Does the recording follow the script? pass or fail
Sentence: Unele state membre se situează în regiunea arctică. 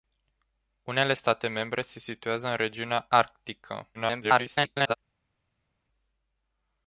fail